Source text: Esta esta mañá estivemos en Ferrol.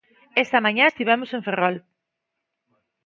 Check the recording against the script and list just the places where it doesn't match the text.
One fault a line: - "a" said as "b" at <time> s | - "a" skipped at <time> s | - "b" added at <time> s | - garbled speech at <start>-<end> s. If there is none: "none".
- "esta" skipped at 0.6 s